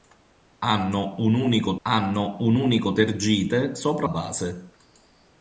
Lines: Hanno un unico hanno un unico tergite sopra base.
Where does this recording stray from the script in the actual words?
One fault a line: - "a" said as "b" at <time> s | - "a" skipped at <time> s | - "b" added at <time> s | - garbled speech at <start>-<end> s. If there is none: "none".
none